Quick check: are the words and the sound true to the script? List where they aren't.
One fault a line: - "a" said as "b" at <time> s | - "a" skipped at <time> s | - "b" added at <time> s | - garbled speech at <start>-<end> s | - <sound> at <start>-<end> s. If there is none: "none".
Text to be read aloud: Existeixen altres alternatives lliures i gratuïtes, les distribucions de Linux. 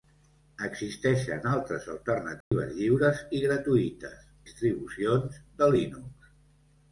- dropout at 2.4-2.5 s
- "les" skipped at 4.3 s